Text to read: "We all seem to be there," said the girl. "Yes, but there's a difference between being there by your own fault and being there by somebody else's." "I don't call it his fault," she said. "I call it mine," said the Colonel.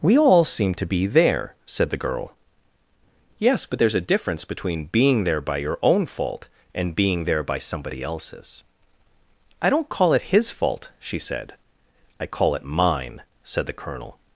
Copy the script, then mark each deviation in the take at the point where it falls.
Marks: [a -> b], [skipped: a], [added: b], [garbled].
"We all seem to be there," said the girl. "Yes, but there's a difference between being there by your own fault and being there by somebody else's." "I don't call it his fault," she said. "I call it mine," said the Colonel.